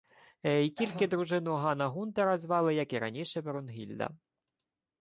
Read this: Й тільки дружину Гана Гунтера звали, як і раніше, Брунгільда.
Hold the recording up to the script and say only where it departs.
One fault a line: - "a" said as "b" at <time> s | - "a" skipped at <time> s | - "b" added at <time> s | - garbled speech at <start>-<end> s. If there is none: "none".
none